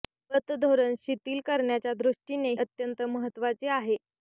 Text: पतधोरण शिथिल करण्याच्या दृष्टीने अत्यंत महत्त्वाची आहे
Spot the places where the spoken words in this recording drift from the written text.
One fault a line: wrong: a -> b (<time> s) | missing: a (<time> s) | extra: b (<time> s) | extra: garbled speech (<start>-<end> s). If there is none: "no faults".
no faults